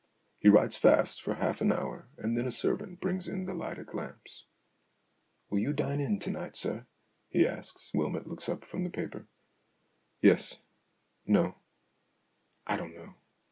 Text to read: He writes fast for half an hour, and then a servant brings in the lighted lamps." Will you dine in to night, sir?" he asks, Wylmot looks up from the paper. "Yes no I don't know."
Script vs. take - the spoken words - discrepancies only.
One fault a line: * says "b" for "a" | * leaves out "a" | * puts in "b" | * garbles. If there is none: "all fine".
all fine